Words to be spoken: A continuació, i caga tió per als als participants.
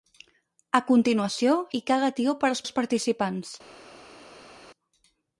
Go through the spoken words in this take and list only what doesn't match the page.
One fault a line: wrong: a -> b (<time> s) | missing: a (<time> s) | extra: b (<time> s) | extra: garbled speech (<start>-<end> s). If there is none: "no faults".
no faults